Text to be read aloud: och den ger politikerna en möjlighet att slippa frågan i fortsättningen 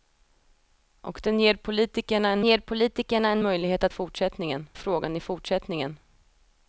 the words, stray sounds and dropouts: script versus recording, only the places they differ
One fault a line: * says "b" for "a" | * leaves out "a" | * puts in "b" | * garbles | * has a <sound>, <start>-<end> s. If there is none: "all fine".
* puts in "ger politikerna en"
* says "fortsättningen" for "slippa"